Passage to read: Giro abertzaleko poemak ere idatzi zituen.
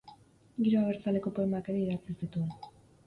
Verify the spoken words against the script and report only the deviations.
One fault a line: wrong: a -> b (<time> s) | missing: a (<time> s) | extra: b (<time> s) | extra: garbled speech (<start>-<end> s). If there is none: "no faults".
no faults